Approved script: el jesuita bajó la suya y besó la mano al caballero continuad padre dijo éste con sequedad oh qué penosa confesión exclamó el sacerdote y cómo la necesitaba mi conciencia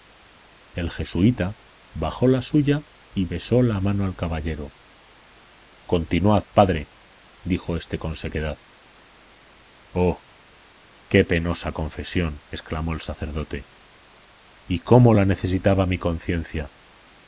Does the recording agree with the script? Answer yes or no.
yes